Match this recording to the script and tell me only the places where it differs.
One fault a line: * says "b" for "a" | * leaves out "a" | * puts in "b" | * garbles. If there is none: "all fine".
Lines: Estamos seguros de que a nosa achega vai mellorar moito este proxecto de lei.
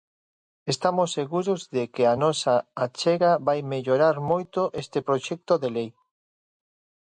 all fine